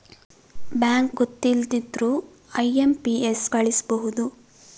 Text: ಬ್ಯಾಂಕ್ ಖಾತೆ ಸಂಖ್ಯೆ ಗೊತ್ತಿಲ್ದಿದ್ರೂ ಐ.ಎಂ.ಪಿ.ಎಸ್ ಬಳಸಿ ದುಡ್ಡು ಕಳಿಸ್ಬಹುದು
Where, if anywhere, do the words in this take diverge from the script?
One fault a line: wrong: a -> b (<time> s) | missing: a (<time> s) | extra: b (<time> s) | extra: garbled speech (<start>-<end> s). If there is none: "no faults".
missing: ಖಾತೆ ಸಂಖ್ಯೆ (1.1 s)
missing: ಬಳಸಿ ದುಡ್ಡು (3.4 s)